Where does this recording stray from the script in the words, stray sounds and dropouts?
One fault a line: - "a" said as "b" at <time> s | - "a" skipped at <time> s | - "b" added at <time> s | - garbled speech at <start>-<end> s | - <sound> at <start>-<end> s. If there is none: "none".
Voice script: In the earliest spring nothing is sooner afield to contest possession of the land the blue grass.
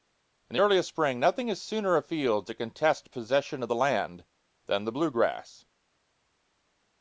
- "than" added at 4.7 s